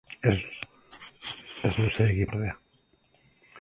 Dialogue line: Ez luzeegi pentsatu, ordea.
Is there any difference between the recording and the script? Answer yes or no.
yes